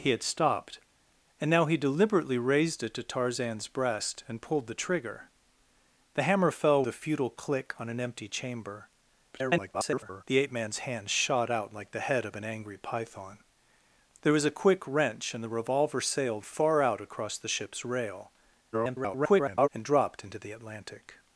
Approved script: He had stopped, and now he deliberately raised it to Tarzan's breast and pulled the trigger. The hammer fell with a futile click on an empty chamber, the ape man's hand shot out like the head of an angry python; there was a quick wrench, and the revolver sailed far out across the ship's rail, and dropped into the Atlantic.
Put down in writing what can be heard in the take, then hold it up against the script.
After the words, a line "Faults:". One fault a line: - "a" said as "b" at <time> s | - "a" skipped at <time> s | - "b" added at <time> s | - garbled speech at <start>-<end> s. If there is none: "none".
He had stopped, and now he deliberately raised it to Tarzan's breast and pulled the trigger. The hammer fell a futile click on an empty chamber, [garbled] the ape man's hand shot out like the head of an angry python; there was a quick wrench, and the revolver sailed far out across the ship's rail, [garbled] and dropped into the Atlantic.
Faults:
- "with" skipped at 6.8 s
- garbled speech at 9.3-10.2 s
- garbled speech at 18.7-19.7 s